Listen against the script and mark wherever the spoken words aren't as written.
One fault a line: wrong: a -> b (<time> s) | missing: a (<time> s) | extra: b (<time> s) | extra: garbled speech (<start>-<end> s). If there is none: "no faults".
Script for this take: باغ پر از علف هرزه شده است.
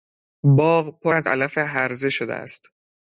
no faults